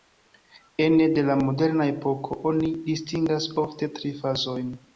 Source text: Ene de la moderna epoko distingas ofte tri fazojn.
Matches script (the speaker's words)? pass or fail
fail